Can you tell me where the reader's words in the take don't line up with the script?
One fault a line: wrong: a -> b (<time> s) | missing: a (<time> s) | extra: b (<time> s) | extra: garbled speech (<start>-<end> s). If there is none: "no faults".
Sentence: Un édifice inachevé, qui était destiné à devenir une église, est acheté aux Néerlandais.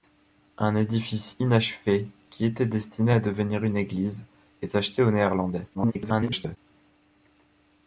extra: garbled speech (5.7-6.6 s)